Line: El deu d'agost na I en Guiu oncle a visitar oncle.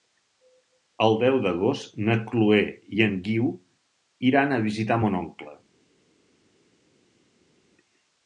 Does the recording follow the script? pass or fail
fail